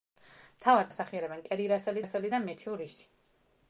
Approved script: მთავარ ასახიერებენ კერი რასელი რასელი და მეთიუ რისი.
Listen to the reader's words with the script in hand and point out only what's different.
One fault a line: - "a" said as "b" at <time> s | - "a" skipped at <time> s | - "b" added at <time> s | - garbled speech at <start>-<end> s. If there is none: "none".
none